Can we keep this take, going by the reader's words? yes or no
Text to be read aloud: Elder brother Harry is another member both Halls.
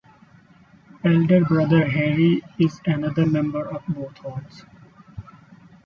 no